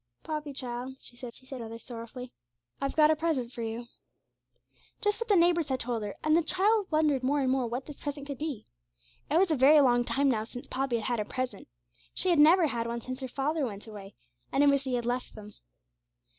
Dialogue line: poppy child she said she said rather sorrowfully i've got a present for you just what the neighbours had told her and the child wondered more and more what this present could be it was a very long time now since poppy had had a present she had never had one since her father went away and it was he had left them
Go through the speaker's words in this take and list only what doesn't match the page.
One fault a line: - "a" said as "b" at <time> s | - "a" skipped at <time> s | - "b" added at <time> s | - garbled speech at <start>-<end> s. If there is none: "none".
none